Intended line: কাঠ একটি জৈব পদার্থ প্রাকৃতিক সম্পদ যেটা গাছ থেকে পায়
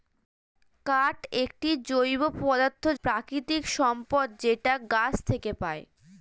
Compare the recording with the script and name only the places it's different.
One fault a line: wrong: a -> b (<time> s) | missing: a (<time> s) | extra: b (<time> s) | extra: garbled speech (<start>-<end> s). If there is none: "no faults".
no faults